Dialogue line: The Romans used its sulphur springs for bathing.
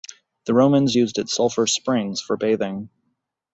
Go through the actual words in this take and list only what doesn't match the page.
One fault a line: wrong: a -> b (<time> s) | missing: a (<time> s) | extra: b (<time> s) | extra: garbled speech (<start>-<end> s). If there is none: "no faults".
no faults